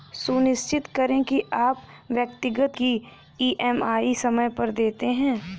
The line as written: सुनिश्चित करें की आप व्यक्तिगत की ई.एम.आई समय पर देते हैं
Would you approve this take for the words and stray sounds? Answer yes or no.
yes